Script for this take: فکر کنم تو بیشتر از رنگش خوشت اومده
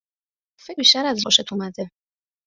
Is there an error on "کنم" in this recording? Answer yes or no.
yes